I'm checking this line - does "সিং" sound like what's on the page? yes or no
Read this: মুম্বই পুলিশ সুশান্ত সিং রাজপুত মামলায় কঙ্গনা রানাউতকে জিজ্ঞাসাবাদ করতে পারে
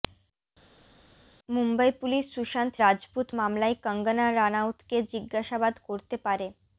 no